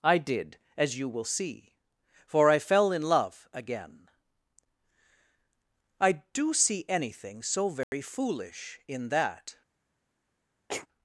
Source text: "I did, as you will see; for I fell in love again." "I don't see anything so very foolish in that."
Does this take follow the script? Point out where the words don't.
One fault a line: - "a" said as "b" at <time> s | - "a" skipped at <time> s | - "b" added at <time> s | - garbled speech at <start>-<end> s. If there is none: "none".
- "don't" said as "do" at 6.3 s